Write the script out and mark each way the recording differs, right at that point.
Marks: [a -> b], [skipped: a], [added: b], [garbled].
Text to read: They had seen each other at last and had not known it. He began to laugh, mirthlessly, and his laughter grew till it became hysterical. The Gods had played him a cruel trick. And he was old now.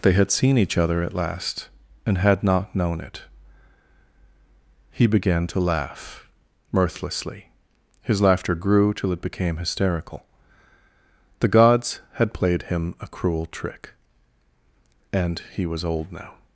They had seen each other at last and had not known it. He began to laugh, mirthlessly, [skipped: and] his laughter grew till it became hysterical. The Gods had played him a cruel trick. And he was old now.